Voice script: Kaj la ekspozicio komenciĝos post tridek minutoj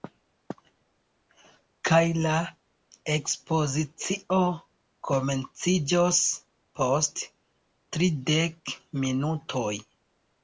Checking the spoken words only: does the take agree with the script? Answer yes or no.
yes